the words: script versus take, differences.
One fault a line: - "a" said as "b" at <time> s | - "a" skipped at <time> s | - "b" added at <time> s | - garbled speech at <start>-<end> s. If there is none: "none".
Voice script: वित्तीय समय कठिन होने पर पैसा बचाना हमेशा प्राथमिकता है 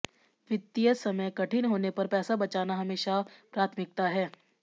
none